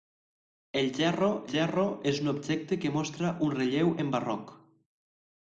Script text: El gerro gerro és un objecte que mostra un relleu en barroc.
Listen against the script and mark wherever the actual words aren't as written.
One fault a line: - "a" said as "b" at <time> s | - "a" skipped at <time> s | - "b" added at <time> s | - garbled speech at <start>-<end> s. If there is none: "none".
none